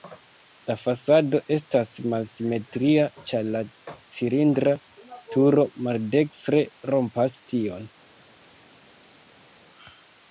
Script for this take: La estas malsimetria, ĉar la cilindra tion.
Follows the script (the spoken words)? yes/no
no